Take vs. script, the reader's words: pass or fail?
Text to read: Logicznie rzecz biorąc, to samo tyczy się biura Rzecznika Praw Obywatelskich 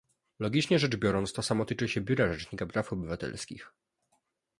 pass